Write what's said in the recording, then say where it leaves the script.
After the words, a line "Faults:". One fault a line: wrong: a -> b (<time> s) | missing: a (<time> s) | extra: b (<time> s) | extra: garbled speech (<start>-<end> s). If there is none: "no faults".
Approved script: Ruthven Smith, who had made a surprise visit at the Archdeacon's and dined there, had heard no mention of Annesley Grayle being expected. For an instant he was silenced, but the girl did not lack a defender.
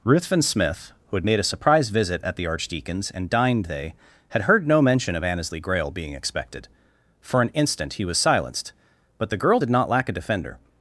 Ruthven Smith, who had made a surprise visit at the Archdeacon's and dined they, had heard no mention of Annesley Grayle being expected. For an instant he was silenced, but the girl did not lack a defender.
Faults:
wrong: there -> they (3.7 s)